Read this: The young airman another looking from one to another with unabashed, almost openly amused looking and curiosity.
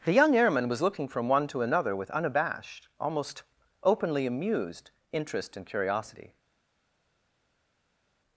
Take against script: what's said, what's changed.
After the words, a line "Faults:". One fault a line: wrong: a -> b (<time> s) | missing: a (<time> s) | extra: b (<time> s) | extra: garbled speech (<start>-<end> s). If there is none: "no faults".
The young airman was looking from one to another with unabashed, almost openly amused interest and curiosity.
Faults:
wrong: another -> was (0.7 s)
wrong: looking -> interest (5.1 s)